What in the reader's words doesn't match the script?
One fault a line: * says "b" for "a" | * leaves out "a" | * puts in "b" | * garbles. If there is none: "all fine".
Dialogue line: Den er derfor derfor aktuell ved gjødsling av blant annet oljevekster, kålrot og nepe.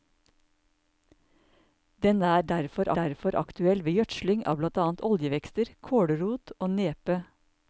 all fine